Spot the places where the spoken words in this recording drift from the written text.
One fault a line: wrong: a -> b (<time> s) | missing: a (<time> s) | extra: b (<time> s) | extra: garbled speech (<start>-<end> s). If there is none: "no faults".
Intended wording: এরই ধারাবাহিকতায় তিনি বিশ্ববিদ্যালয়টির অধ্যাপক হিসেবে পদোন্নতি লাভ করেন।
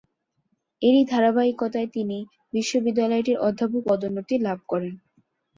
missing: হিসেবে (3.8 s)